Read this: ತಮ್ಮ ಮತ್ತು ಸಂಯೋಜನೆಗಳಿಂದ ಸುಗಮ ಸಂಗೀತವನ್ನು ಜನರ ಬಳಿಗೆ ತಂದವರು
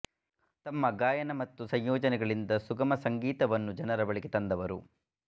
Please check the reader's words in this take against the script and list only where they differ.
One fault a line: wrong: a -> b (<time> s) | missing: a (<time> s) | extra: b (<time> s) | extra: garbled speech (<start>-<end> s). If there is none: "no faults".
extra: ಗಾಯನ (0.9 s)